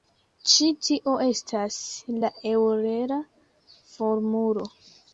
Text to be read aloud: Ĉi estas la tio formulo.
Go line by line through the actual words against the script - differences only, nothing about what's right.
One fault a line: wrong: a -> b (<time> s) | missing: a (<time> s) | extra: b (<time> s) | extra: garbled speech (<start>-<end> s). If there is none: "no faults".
extra: tio (0.9 s)
wrong: tio -> eŭlera (2.6 s)